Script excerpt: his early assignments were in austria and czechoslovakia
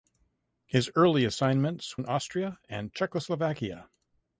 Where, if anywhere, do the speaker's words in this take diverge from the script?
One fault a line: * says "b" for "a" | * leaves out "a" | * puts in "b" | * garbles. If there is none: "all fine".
* leaves out "were"